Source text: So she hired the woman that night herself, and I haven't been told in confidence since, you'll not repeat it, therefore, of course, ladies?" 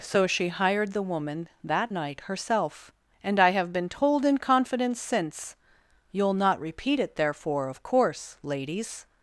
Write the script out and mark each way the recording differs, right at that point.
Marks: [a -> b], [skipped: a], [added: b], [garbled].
So she hired the woman that night herself, and I [haven't -> have] been told in confidence since, you'll not repeat it, therefore, of course, ladies?"